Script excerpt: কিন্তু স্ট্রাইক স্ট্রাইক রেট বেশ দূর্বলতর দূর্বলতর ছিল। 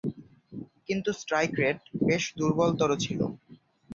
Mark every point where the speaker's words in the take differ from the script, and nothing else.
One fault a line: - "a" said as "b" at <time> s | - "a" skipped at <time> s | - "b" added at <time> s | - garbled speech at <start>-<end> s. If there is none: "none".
- "স্ট্রাইক" skipped at 1.5 s
- "দূর্বলতর" skipped at 2.9 s